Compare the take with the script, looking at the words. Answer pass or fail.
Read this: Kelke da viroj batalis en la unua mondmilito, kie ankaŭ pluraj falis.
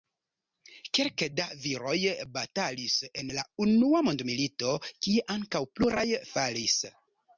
pass